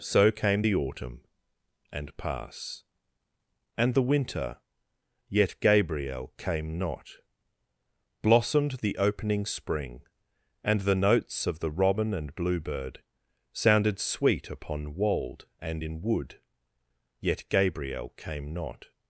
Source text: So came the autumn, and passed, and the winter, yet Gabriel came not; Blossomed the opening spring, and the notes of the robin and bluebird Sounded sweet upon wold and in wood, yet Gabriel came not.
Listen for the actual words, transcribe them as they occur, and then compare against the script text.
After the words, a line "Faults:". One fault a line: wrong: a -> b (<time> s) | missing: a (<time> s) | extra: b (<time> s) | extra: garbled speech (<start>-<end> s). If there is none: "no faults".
So came the autumn, and pass, and the winter, yet Gabriel came not; Blossomed the opening spring, and the notes of the robin and bluebird Sounded sweet upon wold and in wood, yet Gabriel came not.
Faults:
wrong: passed -> pass (2.2 s)